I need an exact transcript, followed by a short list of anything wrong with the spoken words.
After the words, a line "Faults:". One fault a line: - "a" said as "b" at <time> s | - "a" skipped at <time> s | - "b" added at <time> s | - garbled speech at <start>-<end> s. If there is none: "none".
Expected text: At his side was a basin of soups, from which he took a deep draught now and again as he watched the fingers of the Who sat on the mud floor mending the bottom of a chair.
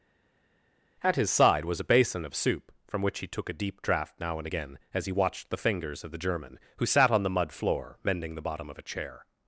At his side was a basin of soup, from which he took a deep draught now and again as he watched the fingers of the German, who sat on the mud floor mending the bottom of a chair.
Faults:
- "soups" said as "soup" at 2.3 s
- "German" added at 6.2 s